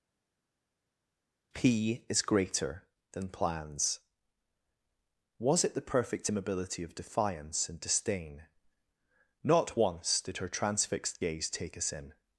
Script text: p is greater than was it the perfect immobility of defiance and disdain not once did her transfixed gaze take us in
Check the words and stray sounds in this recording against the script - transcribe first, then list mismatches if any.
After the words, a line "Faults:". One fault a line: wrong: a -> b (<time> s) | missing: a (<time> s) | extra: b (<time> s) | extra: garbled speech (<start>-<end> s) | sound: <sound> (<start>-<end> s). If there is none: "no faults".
p is greater than plans was it the perfect immobility of defiance and disdain not once did her transfixed gaze take us in
Faults:
extra: plans (3.3 s)